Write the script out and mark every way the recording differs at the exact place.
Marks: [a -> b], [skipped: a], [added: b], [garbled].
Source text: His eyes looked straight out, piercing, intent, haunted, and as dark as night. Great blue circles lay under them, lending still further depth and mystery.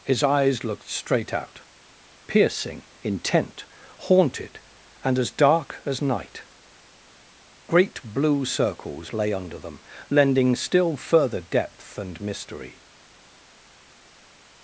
His eyes looked straight out, piercing, intent, haunted, and as dark as night. Great blue circles lay under them, lending still further depth and mystery.